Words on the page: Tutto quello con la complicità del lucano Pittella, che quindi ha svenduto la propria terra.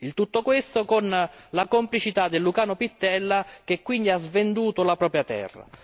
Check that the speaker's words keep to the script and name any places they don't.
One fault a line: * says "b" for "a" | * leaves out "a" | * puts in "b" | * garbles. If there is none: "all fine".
* says "questo" for "quello"